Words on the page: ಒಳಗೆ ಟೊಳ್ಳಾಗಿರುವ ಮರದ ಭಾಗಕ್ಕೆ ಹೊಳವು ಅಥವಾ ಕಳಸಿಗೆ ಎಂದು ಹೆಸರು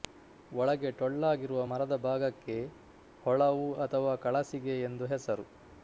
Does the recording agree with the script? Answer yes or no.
yes